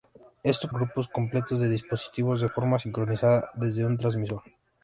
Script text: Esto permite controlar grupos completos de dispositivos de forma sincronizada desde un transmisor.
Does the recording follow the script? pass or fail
fail